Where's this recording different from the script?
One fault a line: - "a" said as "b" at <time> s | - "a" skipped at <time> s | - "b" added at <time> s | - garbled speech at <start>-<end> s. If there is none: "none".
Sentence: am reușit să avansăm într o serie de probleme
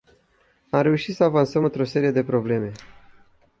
none